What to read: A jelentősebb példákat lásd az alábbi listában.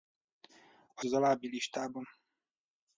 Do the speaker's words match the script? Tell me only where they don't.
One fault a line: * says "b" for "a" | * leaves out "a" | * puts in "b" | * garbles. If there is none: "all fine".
* leaves out "jelentősebb példákat lásd"